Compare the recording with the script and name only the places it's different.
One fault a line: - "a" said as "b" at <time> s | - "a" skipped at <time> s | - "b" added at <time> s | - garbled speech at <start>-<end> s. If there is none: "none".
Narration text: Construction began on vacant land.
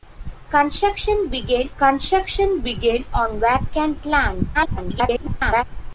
- "construction began" added at 1.8 s
- garbled speech at 4.5-5.6 s